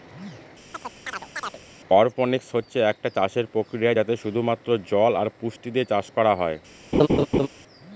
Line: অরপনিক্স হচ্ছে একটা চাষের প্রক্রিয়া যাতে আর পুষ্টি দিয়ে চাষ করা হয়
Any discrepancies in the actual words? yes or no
yes